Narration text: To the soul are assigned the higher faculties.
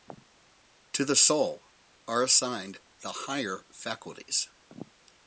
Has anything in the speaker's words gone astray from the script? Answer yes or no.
no